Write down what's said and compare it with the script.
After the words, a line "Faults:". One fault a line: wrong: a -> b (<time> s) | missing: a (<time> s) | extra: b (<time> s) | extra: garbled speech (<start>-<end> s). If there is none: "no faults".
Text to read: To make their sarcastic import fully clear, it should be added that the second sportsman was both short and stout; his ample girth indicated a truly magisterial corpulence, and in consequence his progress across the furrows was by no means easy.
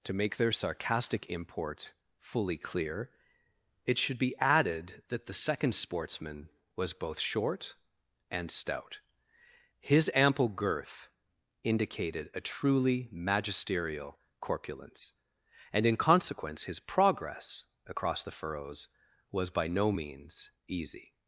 To make their sarcastic import fully clear, it should be added that the second sportsman was both short and stout; his ample girth indicated a truly magisterial corpulence, and in consequence his progress across the furrows was by no means easy.
Faults:
no faults